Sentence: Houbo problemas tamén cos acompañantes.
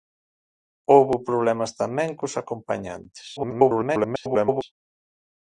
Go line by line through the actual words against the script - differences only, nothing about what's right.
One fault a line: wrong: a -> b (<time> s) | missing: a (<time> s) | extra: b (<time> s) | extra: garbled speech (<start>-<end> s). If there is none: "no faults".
extra: garbled speech (3.4-4.6 s)